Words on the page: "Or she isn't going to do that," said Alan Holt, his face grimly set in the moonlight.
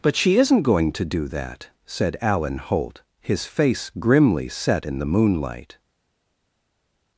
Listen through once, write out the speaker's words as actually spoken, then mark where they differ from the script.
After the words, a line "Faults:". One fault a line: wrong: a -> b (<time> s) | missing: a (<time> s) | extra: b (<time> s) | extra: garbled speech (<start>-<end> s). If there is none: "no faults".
"But she isn't going to do that," said Alan Holt, his face grimly set in the moonlight.
Faults:
wrong: Or -> But (0.0 s)